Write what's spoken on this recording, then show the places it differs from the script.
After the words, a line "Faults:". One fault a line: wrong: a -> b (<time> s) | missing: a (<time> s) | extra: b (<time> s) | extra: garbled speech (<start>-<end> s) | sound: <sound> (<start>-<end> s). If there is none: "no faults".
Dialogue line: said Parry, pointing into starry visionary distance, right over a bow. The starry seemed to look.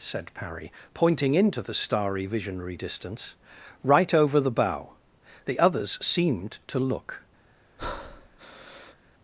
said Parry, pointing into the starry visionary distance, right over the bow. The others seemed to look.
Faults:
extra: the (1.6 s)
wrong: a -> the (4.4 s)
wrong: starry -> others (5.6 s)
sound: breath (7.8-9.0 s)